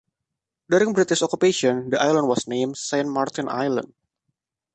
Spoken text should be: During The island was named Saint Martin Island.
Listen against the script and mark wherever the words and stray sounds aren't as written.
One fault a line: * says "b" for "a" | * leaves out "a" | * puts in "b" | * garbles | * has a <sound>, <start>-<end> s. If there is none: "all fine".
* puts in "British occupation"